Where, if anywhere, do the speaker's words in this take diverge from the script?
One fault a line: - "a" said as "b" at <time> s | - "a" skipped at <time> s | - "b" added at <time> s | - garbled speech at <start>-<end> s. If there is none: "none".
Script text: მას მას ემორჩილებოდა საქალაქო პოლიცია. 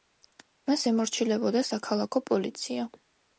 - "მას" skipped at 0.8 s